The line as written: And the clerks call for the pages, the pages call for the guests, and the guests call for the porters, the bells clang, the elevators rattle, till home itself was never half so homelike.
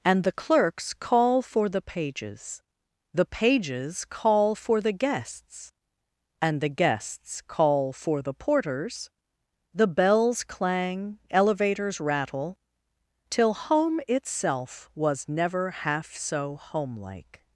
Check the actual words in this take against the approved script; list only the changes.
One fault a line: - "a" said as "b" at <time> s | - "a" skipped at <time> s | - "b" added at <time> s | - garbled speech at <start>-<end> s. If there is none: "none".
- "the" skipped at 11.2 s